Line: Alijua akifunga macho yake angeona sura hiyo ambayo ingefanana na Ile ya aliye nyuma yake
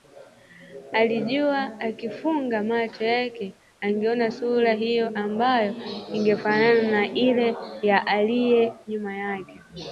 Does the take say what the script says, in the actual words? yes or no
yes